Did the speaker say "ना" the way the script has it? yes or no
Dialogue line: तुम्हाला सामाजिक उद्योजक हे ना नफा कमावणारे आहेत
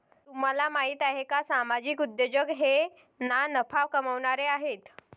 yes